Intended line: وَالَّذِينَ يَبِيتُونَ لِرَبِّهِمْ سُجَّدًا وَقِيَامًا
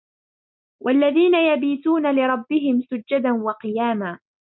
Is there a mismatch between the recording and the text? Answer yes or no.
no